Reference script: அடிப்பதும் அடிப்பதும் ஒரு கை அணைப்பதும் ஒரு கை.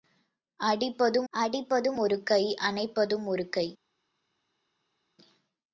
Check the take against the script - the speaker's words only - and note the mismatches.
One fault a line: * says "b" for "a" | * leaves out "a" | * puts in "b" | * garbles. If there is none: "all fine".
all fine